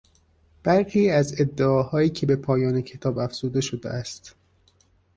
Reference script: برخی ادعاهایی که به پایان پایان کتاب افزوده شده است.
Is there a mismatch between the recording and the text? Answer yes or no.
yes